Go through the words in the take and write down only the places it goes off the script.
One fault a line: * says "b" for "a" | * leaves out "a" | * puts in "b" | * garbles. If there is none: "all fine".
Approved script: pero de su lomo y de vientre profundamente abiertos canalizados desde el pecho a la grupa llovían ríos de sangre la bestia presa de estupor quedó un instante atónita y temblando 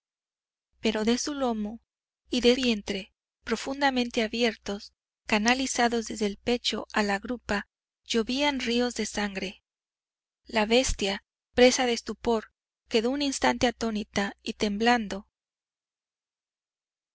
all fine